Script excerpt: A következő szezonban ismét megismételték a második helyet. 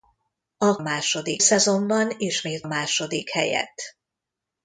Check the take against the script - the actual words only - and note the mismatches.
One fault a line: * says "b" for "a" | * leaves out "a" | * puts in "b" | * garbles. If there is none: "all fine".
* says "második" for "következő"
* leaves out "megismételték a"